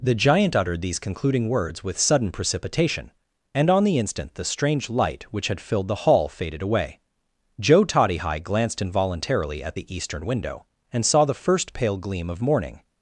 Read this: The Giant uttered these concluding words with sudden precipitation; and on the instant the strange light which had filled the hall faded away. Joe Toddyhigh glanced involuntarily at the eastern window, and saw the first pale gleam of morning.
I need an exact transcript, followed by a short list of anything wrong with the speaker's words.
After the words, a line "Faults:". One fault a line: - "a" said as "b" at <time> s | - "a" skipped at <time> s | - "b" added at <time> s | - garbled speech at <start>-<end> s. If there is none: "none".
The Giant uttered these concluding words with sudden precipitation; and on the instant the strange light which had filled the hall faded away. Joe Toddyhigh glanced involuntarily at the eastern window, and saw the first pale gleam of morning.
Faults:
none